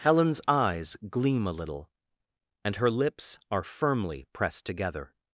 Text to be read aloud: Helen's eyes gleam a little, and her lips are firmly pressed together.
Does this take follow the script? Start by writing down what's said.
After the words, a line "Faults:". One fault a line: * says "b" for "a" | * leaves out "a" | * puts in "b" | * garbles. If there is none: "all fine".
Helen's eyes gleam a little, and her lips are firmly pressed together.
Faults:
all fine